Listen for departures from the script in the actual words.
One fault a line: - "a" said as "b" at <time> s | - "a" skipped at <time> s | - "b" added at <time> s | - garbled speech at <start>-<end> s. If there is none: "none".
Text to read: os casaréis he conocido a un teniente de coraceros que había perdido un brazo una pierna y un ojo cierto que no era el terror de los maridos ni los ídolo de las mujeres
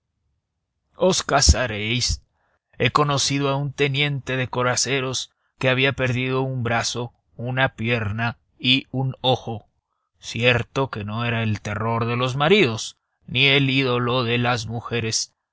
- "los" said as "el" at 13.4 s